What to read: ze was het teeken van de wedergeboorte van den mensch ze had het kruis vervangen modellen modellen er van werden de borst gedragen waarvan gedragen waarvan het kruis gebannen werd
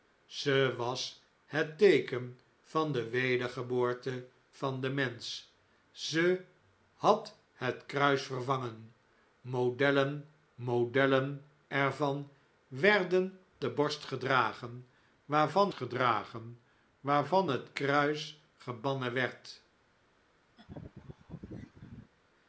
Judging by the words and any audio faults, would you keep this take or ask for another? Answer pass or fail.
fail